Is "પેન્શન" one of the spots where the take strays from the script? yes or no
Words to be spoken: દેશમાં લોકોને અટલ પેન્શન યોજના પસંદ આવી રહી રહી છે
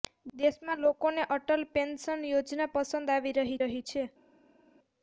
no